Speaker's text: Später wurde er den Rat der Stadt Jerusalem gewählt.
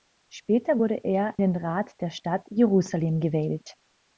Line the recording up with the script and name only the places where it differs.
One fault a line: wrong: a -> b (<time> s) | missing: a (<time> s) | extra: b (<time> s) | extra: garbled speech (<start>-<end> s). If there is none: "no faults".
no faults